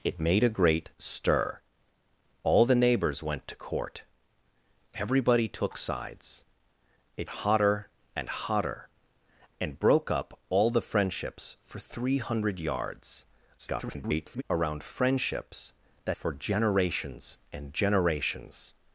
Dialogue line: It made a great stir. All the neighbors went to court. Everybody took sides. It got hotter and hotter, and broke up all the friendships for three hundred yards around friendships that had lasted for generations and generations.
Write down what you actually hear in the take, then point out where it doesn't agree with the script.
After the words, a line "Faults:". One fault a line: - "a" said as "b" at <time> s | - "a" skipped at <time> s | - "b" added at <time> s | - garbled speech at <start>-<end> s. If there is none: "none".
It made a great stir. All the neighbors went to court. Everybody took sides. It hotter and hotter, and broke up all the friendships for three hundred yards [garbled] around friendships that for generations and generations.
Faults:
- "got" skipped at 7.3 s
- garbled speech at 13.6-14.4 s
- "had lasted" skipped at 16.2 s